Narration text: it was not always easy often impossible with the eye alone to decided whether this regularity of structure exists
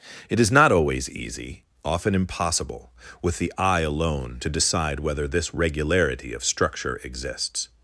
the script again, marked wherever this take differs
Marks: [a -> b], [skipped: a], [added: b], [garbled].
it [was -> is] not always easy often impossible with the eye alone to [decided -> decide] whether this regularity of structure exists